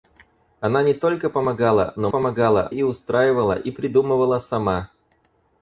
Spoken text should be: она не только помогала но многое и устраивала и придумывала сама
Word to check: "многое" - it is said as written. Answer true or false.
false